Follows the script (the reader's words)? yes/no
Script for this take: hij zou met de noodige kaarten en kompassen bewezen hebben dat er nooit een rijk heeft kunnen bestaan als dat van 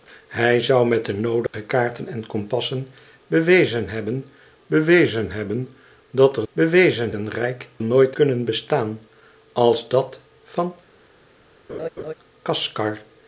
no